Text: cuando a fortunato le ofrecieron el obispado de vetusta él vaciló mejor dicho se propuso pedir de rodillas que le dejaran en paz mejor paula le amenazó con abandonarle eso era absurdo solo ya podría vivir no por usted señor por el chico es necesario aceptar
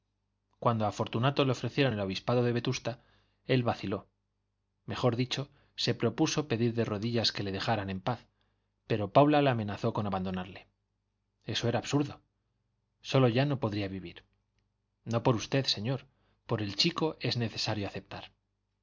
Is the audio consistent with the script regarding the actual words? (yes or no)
no